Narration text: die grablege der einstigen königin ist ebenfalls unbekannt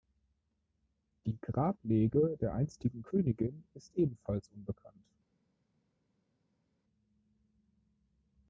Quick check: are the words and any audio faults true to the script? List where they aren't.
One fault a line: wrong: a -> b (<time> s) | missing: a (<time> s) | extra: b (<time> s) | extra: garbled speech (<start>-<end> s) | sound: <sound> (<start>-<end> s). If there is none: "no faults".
no faults